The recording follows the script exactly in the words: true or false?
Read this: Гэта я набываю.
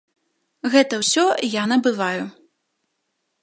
false